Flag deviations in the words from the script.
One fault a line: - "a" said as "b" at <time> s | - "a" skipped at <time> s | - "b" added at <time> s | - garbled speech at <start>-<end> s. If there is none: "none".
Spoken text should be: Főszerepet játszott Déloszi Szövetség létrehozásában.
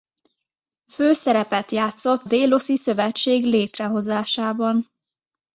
none